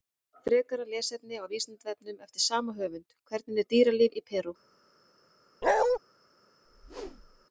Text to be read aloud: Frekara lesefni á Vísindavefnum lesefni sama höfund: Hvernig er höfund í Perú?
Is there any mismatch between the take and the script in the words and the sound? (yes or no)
yes